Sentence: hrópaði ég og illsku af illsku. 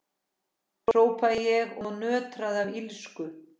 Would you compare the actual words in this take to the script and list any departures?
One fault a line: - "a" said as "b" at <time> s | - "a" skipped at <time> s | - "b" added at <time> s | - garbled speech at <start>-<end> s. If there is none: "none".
- "illsku" said as "nötraði" at 2.0 s